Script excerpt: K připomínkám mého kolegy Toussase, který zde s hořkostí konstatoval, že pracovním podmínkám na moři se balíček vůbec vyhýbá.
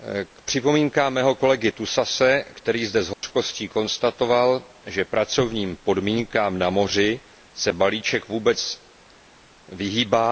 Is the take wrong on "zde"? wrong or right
right